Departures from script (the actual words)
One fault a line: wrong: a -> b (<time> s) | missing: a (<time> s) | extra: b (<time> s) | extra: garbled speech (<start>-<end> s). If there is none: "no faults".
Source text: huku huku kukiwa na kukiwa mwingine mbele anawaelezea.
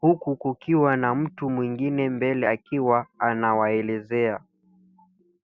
missing: huku (0.3 s)
wrong: kukiwa -> mtu (1.1 s)
extra: akiwa (2.5 s)